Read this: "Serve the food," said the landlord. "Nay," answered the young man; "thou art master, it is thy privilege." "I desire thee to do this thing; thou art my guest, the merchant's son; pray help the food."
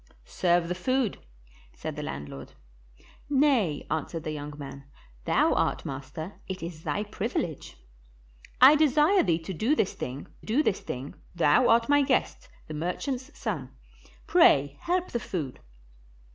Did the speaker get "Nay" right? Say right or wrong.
right